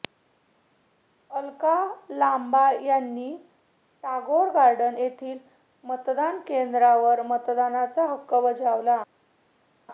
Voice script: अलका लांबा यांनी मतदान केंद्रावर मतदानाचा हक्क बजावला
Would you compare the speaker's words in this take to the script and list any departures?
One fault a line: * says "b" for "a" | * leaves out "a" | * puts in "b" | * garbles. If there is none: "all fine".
* puts in "टागोर गार्डन येथील"